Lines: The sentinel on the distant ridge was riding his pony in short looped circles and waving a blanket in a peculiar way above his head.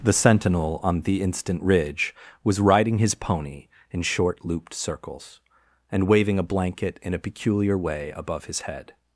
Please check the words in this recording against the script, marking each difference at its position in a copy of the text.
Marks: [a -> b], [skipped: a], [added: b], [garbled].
The sentinel on the [distant -> instant] ridge was riding his pony in short looped circles and waving a blanket in a peculiar way above his head.